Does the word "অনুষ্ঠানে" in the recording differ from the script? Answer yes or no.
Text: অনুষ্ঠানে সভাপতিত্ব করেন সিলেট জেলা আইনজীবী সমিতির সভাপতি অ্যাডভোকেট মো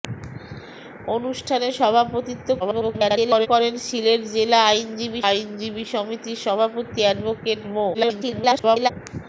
no